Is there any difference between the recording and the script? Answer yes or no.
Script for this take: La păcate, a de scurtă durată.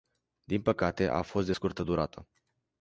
yes